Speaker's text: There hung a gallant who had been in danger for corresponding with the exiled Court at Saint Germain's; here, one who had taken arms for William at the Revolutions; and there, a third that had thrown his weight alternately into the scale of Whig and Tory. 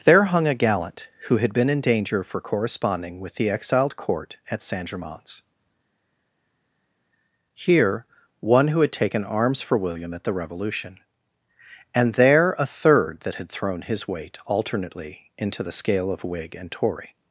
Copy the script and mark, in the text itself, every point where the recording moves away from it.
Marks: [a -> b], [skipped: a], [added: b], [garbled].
There hung a gallant who had been in danger for corresponding with the exiled Court at Saint Germain's; here, one who had taken arms for William at the [Revolutions; -> Revolution] and there, a third that had thrown his weight alternately into the scale of Whig and Tory.